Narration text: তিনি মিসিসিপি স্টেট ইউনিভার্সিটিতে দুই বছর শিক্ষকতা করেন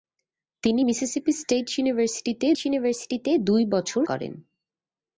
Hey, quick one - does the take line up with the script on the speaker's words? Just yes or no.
no